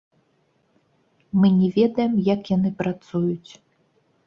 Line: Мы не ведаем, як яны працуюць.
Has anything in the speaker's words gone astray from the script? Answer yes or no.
no